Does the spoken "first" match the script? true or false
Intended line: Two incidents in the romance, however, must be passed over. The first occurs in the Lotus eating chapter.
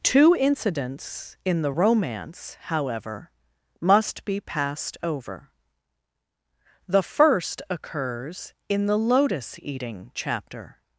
true